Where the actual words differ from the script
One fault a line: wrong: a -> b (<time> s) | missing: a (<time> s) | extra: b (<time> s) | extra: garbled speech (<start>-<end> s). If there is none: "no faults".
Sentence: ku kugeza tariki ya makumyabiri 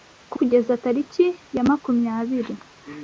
no faults